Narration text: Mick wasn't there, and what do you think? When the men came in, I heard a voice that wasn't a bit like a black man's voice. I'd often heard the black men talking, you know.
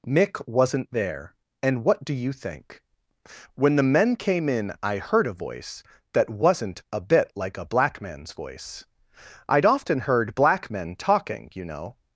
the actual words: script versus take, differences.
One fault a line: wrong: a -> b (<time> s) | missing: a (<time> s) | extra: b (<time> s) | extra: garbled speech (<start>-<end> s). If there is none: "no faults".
missing: the (10.3 s)